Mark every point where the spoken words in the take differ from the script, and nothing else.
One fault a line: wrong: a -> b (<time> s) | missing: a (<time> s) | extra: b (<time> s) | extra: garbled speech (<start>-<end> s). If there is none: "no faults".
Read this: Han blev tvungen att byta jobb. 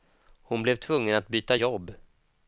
wrong: Han -> Hon (0.4 s)